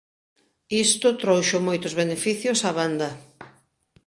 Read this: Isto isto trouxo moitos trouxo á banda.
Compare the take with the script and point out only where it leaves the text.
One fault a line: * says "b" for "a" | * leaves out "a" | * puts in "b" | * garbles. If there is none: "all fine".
* leaves out "isto"
* says "beneficios" for "trouxo"